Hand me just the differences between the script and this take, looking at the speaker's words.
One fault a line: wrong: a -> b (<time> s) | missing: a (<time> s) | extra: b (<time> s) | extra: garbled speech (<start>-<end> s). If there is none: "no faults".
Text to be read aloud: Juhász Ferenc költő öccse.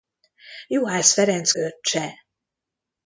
missing: költő (1.5 s)